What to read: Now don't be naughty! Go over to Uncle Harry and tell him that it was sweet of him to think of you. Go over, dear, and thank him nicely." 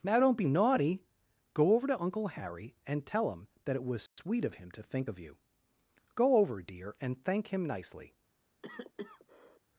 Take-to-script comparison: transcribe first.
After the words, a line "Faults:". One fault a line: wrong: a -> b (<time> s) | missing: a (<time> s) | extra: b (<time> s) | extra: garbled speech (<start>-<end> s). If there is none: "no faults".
Now don't be naughty! Go over to Uncle Harry and tell him that it was sweet of him to think of you. Go over, dear, and thank him nicely."
Faults:
no faults